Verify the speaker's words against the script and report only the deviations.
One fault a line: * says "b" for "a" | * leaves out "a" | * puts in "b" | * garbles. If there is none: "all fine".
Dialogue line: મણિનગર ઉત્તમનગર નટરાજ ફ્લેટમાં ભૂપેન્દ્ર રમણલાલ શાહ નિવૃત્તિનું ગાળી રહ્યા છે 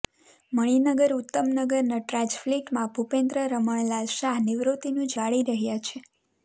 all fine